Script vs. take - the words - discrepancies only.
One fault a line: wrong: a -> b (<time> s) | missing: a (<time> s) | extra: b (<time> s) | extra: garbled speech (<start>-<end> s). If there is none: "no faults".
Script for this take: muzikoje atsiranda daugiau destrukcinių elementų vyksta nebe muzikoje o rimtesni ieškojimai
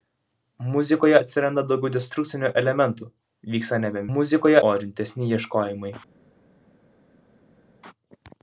no faults